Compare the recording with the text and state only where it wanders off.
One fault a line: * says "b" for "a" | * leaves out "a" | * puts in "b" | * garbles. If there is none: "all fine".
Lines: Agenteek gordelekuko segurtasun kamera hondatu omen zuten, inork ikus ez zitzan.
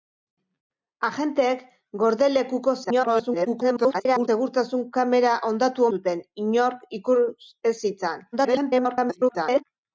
* garbles
* leaves out "omen"
* garbles